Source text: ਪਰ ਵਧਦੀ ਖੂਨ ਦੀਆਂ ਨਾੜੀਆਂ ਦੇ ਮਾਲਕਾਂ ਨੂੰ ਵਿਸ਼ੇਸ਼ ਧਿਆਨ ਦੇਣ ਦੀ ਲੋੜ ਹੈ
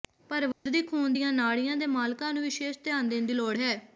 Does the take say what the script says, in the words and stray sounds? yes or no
no